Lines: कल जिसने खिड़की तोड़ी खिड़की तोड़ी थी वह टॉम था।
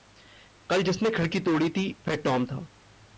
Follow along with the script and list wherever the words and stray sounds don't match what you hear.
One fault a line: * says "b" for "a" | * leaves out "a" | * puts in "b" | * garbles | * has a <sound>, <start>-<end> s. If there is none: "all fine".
* leaves out "खिड़की तोड़ी"